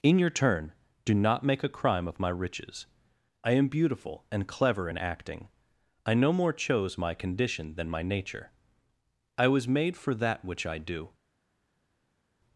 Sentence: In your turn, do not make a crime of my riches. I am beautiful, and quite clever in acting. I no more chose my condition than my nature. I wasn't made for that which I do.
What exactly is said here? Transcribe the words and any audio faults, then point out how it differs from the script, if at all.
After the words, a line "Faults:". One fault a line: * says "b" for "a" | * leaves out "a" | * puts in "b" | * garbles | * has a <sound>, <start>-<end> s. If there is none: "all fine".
In your turn, do not make a crime of my riches. I am beautiful, and clever in acting. I no more chose my condition than my nature. I was made for that which I do.
Faults:
* leaves out "quite"
* says "was" for "wasn't"